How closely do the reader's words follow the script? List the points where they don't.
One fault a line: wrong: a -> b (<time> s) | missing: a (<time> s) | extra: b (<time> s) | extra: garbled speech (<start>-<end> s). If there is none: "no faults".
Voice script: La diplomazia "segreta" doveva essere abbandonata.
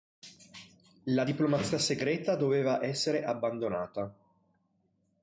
no faults